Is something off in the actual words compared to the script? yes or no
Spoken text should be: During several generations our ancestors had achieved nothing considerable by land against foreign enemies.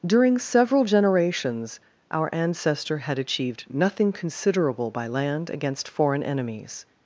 yes